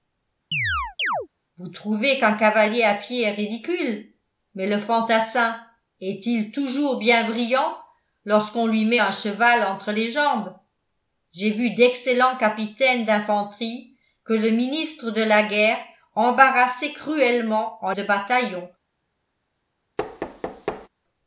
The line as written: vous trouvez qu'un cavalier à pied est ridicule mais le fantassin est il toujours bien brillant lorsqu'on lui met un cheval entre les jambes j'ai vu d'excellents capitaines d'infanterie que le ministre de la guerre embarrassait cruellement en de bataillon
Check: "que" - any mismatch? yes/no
no